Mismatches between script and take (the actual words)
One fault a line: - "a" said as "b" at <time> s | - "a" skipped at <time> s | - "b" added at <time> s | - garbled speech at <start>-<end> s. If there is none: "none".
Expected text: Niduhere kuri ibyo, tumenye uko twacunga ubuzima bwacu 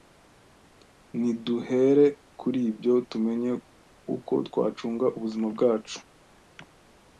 none